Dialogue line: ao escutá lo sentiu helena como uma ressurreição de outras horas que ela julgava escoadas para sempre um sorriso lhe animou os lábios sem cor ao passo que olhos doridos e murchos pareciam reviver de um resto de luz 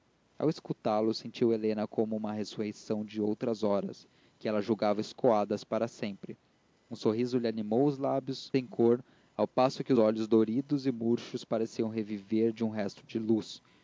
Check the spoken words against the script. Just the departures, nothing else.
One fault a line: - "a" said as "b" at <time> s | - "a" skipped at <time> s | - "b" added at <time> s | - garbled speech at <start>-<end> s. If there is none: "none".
none